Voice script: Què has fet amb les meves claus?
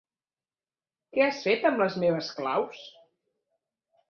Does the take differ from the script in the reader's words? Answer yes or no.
no